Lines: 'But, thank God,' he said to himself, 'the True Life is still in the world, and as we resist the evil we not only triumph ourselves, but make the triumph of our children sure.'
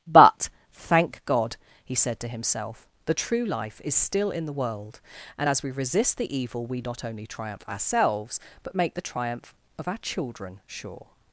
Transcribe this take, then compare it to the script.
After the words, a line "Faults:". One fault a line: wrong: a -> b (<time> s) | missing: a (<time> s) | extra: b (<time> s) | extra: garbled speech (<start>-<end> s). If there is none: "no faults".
'But, thank God,' he said to himself, 'the True Life is still in the world, and as we resist the evil we not only triumph ourselves, but make the triumph of our children sure.'
Faults:
no faults